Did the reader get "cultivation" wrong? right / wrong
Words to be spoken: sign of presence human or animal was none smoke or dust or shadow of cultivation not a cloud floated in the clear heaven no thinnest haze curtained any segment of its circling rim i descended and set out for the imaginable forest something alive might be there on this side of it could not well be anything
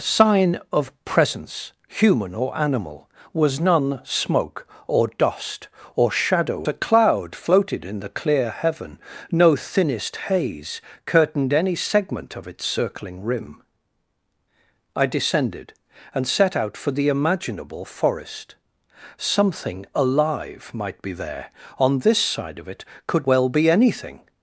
wrong